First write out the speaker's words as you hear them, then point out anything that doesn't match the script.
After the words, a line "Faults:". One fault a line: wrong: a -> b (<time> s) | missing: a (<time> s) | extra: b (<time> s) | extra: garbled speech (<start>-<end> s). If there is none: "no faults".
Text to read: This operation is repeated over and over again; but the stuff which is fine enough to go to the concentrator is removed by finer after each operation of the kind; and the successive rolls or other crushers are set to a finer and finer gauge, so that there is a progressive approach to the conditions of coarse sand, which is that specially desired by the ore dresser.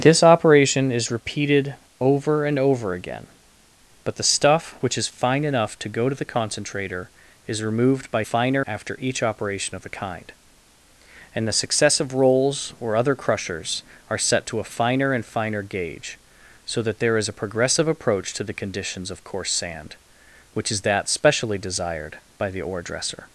This operation is repeated over and over again; but the stuff which is fine enough to go to the concentrator is removed by finer after each operation of the kind; and the successive rolls or other crushers are set to a finer and finer gauge, so that there is a progressive approach to the conditions of coarse sand, which is that specially desired by the ore dresser.
Faults:
no faults